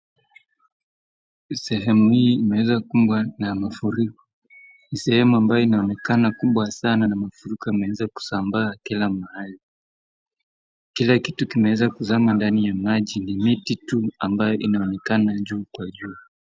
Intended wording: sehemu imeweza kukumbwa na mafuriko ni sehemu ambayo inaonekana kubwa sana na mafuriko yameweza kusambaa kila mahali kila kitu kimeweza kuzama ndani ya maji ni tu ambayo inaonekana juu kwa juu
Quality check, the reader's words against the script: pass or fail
fail